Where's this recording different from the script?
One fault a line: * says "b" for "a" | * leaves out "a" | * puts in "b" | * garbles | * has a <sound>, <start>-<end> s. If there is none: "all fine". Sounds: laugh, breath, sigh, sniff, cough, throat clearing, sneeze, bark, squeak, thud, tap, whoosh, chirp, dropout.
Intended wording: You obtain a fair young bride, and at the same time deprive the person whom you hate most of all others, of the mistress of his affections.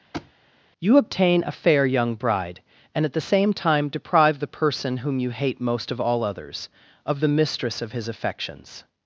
* has a thud, 0.1-0.3 s